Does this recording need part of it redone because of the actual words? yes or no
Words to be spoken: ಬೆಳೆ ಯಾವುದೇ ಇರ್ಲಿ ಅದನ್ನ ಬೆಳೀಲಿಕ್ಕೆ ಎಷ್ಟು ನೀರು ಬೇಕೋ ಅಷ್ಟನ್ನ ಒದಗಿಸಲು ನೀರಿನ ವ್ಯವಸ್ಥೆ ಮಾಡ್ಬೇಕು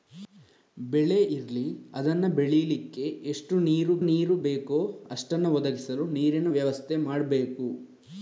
yes